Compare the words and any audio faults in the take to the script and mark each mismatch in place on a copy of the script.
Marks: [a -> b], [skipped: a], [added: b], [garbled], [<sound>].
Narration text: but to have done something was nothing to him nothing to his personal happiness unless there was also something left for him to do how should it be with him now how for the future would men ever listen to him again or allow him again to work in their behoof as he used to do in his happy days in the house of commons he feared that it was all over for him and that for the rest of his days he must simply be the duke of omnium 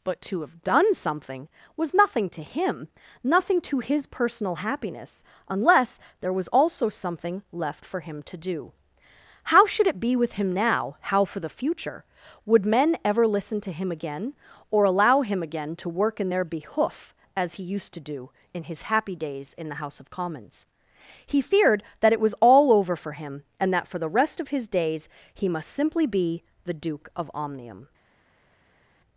but to have done something was nothing to him nothing to his personal happiness unless there was also something left for him to do how should it be with him now how for the future would men ever listen to him again or allow him again to work in their behoof as he used to do in his happy days in the house of commons he feared that it was all over for him and that for the rest of his days he must simply be the duke of omnium